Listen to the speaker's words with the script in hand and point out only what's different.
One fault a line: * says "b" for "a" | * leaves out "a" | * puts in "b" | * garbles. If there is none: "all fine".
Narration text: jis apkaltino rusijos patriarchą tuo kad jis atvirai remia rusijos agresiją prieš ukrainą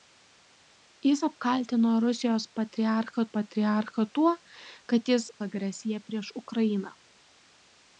* puts in "patriarchą"
* leaves out "atvirai remia rusijos"